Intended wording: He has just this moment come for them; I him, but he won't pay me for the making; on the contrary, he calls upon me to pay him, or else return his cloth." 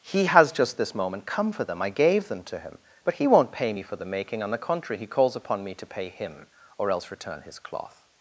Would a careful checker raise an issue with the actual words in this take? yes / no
yes